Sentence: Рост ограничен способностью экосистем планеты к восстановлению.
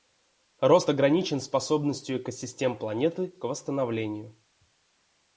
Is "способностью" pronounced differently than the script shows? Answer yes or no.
no